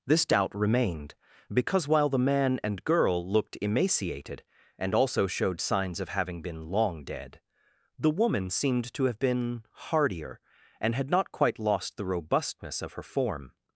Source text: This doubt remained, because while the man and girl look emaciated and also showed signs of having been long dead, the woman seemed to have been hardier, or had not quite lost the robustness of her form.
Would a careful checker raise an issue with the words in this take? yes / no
yes